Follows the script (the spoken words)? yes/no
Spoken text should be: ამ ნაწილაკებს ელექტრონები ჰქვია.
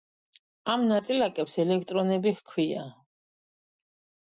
yes